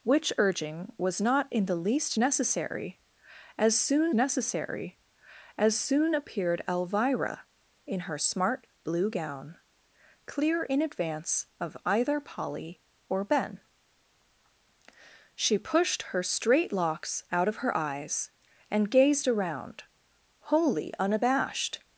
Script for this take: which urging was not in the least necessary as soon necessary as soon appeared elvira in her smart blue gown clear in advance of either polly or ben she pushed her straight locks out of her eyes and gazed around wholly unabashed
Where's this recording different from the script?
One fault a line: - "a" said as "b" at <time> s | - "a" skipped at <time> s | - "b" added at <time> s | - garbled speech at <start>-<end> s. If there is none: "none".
none